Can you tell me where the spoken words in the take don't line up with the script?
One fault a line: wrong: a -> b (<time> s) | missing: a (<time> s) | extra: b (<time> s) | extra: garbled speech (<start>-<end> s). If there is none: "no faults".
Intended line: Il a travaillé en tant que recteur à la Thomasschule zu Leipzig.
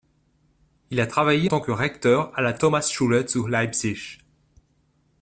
missing: en (1.5 s)